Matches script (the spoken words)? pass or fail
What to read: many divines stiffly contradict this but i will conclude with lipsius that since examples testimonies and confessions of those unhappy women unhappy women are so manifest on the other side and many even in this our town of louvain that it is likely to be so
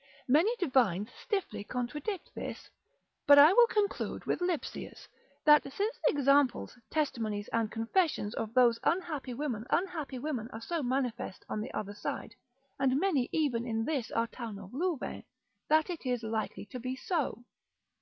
pass